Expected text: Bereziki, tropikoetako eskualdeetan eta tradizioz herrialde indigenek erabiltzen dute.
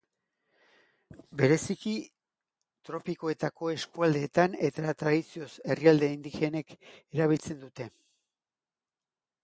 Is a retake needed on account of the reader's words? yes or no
no